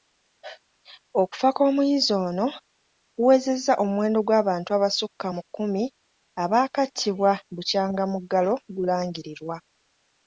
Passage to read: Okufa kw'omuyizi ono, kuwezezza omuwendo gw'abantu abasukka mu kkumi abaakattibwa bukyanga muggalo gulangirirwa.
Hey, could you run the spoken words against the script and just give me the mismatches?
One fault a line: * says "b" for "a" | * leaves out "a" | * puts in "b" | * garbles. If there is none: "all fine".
all fine